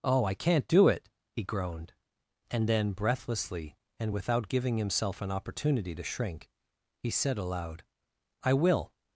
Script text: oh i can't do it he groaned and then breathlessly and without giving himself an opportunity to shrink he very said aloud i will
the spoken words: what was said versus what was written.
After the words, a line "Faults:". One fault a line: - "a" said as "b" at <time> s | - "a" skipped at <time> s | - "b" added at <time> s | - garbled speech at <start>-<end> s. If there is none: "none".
oh i can't do it he groaned and then breathlessly and without giving himself an opportunity to shrink he said aloud i will
Faults:
- "very" skipped at 7.1 s